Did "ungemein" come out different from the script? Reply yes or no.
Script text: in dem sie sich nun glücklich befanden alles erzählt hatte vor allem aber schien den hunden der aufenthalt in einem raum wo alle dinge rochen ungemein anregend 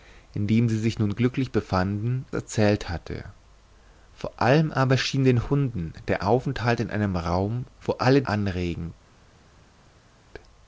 yes